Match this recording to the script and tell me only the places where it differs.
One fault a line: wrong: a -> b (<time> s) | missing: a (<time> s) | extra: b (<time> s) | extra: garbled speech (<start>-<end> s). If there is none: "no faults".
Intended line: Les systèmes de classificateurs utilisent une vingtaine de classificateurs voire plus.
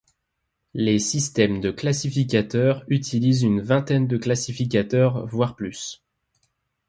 no faults